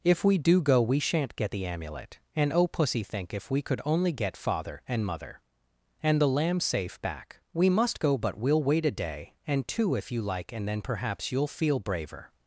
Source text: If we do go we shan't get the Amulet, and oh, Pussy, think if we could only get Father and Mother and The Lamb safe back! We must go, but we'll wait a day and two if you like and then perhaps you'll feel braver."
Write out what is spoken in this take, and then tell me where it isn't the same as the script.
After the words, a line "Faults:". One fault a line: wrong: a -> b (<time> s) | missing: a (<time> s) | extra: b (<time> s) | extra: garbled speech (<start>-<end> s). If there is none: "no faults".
If we do go we shan't get the Amulet, and oh, Pussy, think if we could only get Father and Mother and The Lamb safe back! We must go, but we'll wait a day and two if you like and then perhaps you'll feel braver."
Faults:
no faults